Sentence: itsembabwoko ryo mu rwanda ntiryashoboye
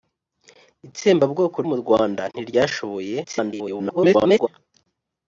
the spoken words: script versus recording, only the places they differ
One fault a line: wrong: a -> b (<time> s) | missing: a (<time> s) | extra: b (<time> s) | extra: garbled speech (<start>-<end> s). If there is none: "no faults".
missing: ryo (1.6 s)
extra: garbled speech (3.2-4.5 s)